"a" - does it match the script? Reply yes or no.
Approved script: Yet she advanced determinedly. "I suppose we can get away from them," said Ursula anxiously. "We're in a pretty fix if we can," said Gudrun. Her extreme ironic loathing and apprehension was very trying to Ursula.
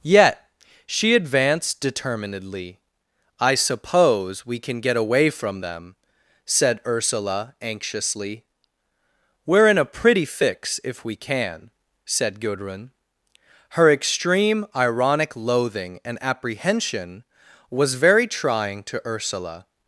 yes